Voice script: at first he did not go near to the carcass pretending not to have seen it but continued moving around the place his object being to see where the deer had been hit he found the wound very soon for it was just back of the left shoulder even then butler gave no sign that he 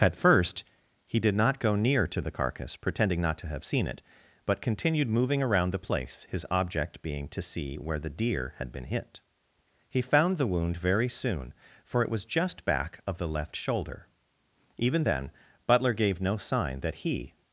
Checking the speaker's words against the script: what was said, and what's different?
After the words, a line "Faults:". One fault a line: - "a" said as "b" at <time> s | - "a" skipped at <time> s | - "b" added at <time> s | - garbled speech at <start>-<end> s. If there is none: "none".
at first he did not go near to the carcass pretending not to have seen it but continued moving around the place his object being to see where the deer had been hit he found the wound very soon for it was just back of the left shoulder even then butler gave no sign that he
Faults:
none